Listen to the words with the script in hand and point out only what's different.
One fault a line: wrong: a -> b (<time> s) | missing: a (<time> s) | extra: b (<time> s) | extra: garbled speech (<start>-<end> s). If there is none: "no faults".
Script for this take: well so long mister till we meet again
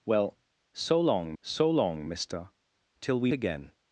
extra: so long (1.4 s)
missing: meet (3.3 s)